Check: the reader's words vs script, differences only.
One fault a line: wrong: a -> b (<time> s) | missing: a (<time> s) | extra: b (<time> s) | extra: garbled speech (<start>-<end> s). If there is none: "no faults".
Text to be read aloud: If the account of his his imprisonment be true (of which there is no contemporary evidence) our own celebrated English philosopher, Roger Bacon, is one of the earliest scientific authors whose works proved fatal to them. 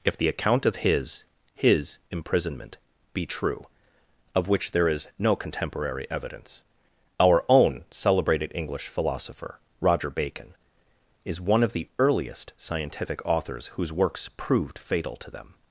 no faults